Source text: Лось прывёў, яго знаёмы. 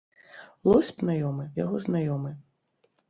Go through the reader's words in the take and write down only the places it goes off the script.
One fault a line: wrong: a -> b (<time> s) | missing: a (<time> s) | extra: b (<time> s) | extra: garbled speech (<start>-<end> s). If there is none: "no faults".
wrong: прывёў -> знаёмы (1.0 s)